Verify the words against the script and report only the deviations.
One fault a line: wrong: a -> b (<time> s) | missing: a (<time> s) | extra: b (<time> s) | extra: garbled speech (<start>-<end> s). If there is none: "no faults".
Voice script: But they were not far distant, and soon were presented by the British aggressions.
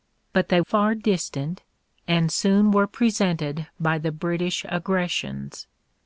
missing: were not (0.6 s)